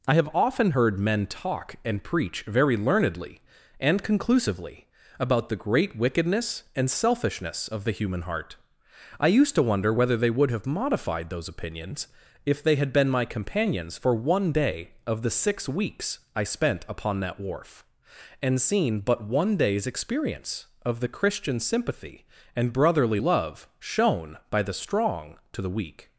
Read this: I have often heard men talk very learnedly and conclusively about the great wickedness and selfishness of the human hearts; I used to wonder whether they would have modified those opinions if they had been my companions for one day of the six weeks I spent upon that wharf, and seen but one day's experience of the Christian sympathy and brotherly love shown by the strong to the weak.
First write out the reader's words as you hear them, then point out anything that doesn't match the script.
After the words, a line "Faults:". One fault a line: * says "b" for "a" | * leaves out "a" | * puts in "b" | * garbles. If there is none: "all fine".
I have often heard men talk and preach very learnedly and conclusively about the great wickedness and selfishness of the human heart; I used to wonder whether they would have modified those opinions if they had been my companions for one day of the six weeks I spent upon that wharf, and seen but one day's experience of the Christian sympathy and brotherly love shown by the strong to the weak.
Faults:
* puts in "and preach"
* says "heart" for "hearts"